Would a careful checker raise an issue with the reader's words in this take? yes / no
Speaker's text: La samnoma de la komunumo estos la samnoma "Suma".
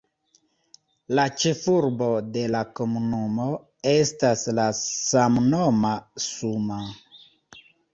yes